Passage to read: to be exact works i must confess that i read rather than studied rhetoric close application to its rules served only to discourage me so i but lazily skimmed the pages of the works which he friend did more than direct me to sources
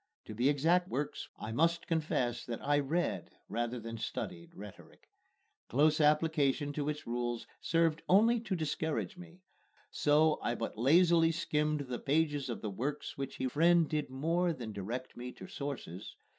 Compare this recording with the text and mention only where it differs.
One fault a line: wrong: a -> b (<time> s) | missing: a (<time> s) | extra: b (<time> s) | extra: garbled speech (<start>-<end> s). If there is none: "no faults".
no faults